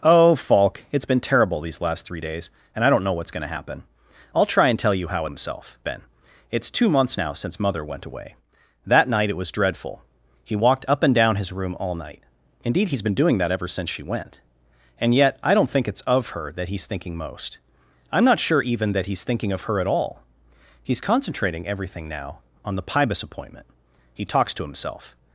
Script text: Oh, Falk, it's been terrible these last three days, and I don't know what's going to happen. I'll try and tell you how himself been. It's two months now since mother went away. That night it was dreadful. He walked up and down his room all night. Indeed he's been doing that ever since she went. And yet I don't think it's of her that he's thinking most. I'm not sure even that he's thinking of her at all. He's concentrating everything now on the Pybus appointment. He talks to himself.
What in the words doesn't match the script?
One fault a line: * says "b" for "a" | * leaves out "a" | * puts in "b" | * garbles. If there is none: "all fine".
all fine